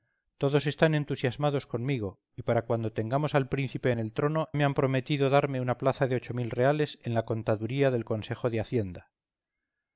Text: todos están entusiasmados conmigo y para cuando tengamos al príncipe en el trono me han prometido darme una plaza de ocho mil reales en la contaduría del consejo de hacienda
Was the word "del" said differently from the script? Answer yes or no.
no